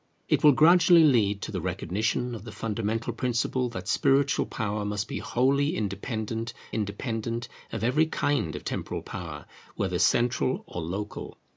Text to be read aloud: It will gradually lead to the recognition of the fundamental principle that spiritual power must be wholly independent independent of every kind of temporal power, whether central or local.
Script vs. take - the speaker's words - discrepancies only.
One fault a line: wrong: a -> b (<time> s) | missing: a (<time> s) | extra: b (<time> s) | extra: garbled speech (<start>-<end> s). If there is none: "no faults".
no faults